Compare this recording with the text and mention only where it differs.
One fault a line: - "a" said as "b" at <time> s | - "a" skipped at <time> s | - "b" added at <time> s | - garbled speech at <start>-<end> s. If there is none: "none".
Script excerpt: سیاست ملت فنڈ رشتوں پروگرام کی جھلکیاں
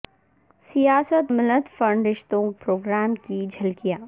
none